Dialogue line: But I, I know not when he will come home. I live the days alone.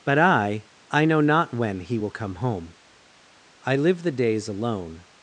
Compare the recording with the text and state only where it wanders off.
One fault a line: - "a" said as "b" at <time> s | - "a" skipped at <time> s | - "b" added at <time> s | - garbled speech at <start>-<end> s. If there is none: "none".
none